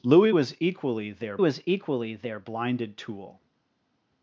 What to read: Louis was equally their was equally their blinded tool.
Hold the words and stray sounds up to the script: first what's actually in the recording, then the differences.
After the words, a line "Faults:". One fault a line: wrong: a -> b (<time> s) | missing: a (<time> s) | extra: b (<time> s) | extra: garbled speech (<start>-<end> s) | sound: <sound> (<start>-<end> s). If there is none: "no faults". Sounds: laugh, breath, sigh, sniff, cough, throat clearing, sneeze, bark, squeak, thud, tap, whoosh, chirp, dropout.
Louis was equally their was equally their blinded tool.
Faults:
no faults